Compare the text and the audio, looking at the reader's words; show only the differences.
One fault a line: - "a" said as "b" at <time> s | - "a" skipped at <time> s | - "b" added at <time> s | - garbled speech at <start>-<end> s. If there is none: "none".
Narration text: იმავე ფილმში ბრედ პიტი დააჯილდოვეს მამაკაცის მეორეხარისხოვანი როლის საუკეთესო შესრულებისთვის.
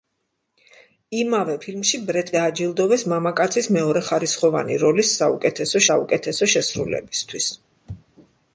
- "პიტი" skipped at 2.3 s
- "საუკეთესო" added at 5.9 s